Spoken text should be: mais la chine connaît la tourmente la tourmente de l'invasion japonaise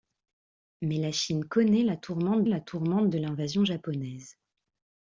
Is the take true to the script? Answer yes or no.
yes